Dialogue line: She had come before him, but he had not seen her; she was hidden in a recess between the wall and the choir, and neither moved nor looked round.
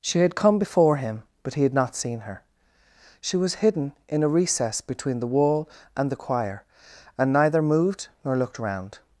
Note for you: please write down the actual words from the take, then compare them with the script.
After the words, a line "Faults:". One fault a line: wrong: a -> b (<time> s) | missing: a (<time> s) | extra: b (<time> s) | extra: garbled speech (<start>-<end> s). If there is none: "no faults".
She had come before him, but he had not seen her; she was hidden in a recess between the wall and the choir, and neither moved nor looked round.
Faults:
no faults